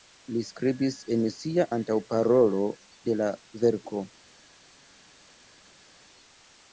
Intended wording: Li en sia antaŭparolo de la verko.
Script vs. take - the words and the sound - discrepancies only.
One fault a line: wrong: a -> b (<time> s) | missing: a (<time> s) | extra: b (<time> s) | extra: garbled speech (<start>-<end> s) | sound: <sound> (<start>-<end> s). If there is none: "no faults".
extra: skribis (0.5 s)